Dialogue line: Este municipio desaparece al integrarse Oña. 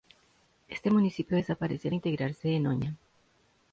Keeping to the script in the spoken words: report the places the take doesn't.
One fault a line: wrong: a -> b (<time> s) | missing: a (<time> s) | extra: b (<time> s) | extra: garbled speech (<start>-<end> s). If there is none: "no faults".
extra: en (2.5 s)